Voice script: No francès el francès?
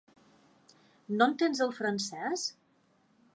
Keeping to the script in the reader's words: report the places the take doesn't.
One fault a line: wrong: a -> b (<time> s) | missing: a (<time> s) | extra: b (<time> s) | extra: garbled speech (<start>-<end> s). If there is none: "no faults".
wrong: francès -> entens (1.3 s)